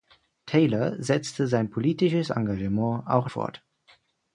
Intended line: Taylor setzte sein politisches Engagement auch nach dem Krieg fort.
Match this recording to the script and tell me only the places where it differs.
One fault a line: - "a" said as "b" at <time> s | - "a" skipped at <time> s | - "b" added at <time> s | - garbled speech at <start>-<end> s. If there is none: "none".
- "nach dem Krieg" skipped at 3.3 s